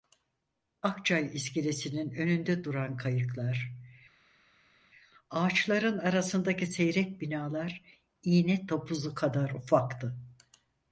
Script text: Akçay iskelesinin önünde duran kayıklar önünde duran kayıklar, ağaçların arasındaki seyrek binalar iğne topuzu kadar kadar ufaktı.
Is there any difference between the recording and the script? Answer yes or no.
yes